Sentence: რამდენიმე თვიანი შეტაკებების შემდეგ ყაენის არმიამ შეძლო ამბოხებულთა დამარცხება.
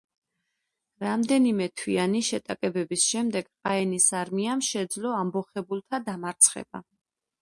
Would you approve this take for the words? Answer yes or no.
yes